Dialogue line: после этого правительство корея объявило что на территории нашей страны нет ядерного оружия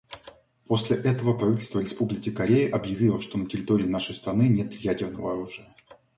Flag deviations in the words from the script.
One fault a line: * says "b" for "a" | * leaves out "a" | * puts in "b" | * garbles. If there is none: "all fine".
* puts in "республики"